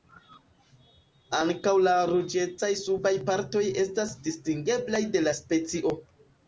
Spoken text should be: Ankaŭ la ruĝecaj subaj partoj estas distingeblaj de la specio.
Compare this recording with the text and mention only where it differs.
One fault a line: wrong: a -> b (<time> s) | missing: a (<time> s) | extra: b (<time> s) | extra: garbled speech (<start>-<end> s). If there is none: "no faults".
no faults